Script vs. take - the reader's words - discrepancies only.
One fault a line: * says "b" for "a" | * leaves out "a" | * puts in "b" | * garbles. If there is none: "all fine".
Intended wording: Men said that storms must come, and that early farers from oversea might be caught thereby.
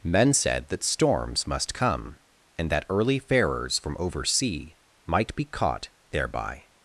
all fine